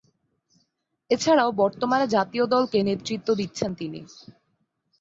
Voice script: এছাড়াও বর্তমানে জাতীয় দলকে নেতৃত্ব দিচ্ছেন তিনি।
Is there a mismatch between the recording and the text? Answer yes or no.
no